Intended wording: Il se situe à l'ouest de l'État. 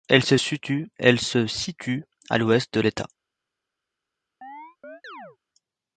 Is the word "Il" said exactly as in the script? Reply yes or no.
no